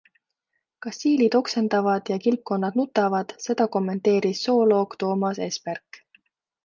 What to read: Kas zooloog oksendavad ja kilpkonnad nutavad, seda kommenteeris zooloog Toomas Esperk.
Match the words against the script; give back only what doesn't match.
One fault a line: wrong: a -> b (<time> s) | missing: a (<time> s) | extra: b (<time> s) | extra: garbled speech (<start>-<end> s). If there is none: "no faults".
wrong: zooloog -> siilid (1.0 s)